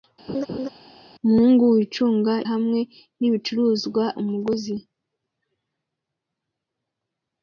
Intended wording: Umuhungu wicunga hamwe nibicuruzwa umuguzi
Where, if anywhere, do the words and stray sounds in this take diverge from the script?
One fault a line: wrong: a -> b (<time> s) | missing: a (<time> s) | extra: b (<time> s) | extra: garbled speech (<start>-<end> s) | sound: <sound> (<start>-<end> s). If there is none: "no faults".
sound: laugh (0.3-0.7 s)